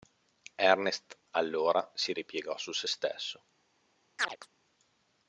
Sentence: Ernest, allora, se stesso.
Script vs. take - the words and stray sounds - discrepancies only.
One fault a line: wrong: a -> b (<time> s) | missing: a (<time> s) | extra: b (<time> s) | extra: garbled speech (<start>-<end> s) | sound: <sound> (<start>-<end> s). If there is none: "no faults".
extra: si ripiegò su (1.9 s)
sound: chirp (4.2-4.5 s)